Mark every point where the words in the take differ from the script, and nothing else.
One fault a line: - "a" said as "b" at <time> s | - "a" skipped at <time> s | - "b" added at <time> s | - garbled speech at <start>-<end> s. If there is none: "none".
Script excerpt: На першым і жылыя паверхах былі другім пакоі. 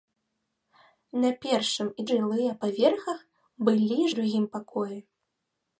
none